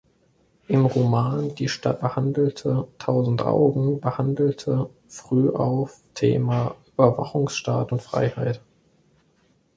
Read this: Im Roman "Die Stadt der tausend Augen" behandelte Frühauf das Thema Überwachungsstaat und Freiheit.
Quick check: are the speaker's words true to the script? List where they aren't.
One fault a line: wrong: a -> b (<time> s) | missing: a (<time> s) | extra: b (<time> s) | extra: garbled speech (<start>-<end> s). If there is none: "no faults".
wrong: der -> behandelte (2.0 s)
missing: das (6.0 s)